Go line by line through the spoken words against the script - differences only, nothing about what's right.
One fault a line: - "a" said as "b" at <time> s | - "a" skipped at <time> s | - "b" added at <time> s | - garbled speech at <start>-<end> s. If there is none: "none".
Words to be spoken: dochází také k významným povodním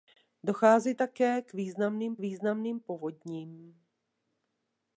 - "významným" added at 2.2 s